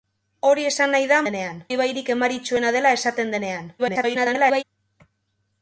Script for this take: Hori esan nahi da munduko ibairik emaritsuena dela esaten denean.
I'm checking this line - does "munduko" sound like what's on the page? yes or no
no